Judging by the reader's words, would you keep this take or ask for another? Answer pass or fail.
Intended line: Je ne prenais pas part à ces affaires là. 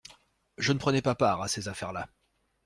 pass